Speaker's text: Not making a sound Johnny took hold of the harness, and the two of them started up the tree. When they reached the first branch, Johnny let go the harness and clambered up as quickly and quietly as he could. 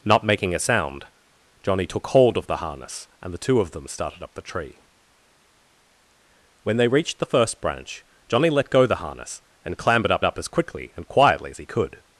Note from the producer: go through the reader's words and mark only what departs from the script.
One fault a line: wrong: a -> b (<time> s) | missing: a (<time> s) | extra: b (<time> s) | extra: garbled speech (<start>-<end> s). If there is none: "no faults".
extra: up (10.2 s)